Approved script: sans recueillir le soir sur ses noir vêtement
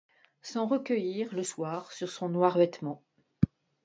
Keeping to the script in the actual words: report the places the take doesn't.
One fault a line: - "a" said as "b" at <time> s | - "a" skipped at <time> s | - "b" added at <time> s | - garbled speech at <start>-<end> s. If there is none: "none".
- "ses" said as "son" at 2.1 s